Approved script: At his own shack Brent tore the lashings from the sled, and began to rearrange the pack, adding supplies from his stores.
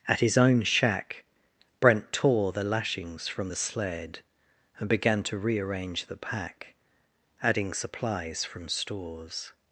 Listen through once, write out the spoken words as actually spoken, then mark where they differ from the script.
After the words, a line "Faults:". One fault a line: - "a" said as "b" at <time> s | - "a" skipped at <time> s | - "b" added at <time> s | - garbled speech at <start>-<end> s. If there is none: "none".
At his own shack Brent tore the lashings from the sled, and began to rearrange the pack, adding supplies from stores.
Faults:
- "his" skipped at 8.7 s